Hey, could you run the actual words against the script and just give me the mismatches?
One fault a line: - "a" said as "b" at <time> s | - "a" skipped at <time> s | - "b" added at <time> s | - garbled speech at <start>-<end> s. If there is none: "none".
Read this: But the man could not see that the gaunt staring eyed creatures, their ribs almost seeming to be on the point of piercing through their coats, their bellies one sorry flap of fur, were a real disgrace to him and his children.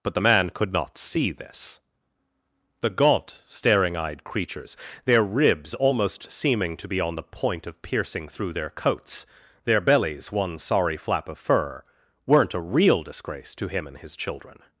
- "that" said as "this" at 1.3 s
- "were" said as "weren't" at 12.2 s